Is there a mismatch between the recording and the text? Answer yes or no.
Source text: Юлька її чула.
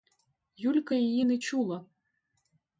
yes